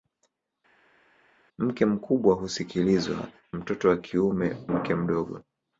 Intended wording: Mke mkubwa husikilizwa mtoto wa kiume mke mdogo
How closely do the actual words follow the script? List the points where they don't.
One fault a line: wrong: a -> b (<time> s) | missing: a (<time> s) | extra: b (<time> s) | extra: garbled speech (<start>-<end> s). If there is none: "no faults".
no faults